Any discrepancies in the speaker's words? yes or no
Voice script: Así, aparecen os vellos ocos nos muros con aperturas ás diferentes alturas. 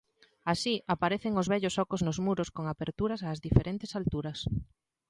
no